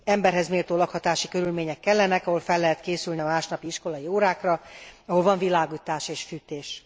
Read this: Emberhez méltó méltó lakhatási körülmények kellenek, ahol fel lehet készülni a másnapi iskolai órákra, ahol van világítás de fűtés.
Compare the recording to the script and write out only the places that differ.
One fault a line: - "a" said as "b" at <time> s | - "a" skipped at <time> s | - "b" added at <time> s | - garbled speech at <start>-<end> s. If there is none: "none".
- "méltó" skipped at 0.8 s
- "de" said as "és" at 6.1 s